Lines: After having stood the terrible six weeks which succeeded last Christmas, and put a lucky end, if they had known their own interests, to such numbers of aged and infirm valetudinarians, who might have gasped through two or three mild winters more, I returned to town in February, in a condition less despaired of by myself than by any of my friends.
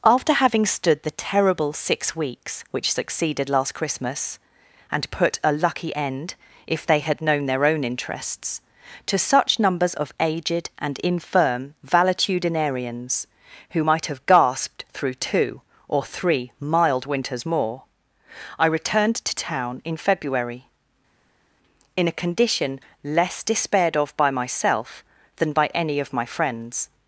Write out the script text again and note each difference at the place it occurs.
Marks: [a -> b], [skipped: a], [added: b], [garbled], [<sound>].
After having stood the terrible six weeks which succeeded last Christmas, and put a lucky end, if they had known their own interests, to such numbers of aged and infirm valetudinarians, who might have gasped through two or three mild winters more, I returned to town in February, in a condition less despaired of by myself than by any of my friends.